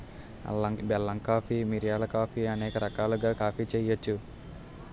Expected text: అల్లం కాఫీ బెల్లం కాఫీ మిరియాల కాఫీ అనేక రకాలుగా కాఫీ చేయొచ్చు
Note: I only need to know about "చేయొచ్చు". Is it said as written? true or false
true